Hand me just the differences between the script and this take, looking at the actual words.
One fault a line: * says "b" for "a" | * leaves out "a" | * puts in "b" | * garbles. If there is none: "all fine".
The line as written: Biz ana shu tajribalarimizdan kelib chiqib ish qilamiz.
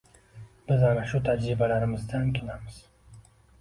* leaves out "kelib chiqib ish"